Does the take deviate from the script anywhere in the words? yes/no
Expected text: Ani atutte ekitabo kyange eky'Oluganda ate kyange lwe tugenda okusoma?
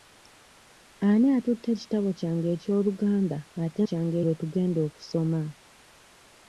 no